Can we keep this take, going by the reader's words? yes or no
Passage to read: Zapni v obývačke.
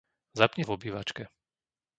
yes